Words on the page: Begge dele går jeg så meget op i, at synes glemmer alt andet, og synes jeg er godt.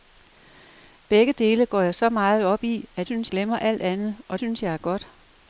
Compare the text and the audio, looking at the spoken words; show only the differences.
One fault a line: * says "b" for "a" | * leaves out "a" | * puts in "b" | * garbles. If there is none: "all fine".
all fine